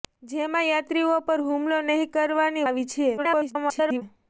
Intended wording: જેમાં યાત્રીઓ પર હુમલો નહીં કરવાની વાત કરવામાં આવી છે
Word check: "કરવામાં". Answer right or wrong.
wrong